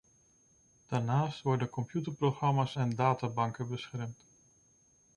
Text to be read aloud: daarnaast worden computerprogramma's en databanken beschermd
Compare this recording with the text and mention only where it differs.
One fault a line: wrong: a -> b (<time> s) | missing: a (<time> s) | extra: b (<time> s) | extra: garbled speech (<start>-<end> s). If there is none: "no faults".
no faults